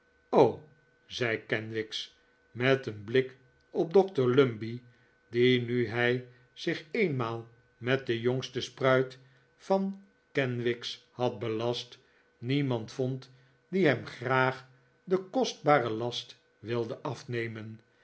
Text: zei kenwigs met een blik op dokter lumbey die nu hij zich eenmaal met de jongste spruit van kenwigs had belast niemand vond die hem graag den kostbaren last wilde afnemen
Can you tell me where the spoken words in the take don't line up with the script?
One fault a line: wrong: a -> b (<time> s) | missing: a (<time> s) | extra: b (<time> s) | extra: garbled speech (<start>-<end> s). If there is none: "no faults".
no faults